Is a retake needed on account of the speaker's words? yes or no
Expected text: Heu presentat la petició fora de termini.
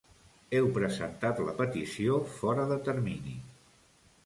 no